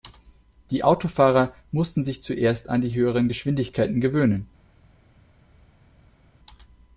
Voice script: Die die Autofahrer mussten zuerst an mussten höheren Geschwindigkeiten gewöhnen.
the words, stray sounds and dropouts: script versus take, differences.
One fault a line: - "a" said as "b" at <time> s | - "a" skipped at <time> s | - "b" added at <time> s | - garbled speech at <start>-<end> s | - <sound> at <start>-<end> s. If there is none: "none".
- "die" skipped at 0.8 s
- "sich" added at 2.0 s
- "mussten" said as "die" at 2.8 s